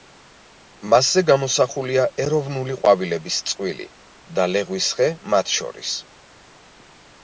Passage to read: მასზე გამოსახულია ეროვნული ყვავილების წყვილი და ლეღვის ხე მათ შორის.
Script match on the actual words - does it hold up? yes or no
yes